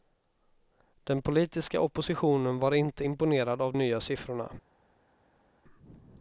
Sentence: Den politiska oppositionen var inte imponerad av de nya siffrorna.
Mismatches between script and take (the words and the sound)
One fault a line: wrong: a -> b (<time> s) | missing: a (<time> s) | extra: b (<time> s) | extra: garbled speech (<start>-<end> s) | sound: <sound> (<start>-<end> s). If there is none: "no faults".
missing: de (3.7 s)